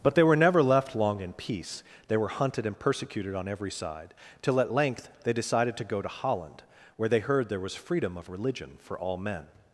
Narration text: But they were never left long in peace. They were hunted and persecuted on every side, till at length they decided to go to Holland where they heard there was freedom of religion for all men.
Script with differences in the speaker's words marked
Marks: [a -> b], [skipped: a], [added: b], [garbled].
But they were never left long in peace. They were hunted and persecuted on every side, till at length they decided to go to Holland where they heard there was freedom of religion for all men.